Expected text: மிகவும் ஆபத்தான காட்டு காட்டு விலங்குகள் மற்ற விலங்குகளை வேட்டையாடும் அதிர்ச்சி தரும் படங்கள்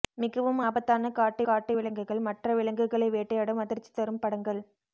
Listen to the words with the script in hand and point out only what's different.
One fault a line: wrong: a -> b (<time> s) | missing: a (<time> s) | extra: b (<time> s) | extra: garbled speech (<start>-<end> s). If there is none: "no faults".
no faults